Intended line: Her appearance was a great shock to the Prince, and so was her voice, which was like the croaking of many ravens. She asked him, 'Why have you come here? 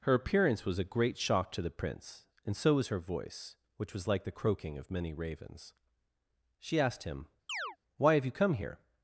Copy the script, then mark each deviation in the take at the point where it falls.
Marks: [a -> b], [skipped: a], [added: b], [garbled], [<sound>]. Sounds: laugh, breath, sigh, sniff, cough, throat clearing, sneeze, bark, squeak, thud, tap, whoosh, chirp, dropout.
Her appearance was a great shock to the Prince, and so was her voice, which was like the croaking of many ravens. She asked him, [chirp] 'Why have you come here?